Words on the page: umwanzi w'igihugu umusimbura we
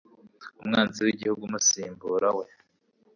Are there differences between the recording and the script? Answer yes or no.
no